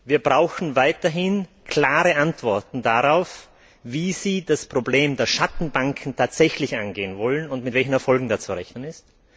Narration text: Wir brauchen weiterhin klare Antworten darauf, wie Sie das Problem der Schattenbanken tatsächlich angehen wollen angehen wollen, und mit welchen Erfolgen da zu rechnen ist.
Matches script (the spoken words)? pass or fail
fail